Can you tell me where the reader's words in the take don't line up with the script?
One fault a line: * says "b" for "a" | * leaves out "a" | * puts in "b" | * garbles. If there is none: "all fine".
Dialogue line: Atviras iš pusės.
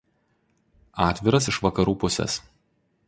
* puts in "vakarų"